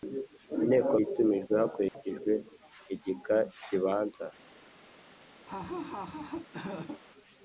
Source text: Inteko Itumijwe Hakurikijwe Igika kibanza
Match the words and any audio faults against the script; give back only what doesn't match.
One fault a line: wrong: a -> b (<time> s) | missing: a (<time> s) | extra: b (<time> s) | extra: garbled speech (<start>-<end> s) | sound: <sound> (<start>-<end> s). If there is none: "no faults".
sound: dropout (1.9-1.9 s)
sound: laugh (5.5-7.0 s)